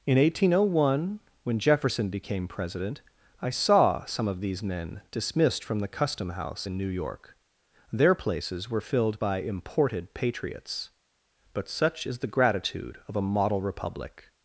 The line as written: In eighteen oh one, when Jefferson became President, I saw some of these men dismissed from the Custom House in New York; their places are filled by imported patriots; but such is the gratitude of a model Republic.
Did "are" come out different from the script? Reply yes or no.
yes